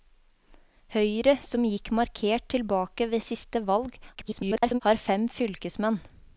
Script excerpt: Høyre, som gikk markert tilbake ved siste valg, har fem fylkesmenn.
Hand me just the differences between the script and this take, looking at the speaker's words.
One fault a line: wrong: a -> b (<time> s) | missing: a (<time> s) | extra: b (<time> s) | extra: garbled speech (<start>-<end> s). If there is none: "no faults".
extra: garbled speech (4.1-4.8 s)